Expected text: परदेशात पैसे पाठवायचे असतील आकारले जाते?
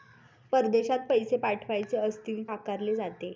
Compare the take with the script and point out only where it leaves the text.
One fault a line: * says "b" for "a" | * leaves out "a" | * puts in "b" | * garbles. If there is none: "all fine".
all fine